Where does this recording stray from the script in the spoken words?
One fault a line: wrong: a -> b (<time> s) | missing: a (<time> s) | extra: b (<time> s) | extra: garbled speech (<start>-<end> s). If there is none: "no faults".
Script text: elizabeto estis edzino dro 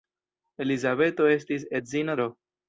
no faults